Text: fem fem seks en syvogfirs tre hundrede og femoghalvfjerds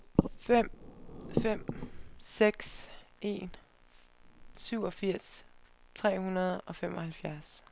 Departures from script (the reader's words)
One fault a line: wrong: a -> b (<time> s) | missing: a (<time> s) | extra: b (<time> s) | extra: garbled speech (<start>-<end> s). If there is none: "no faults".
no faults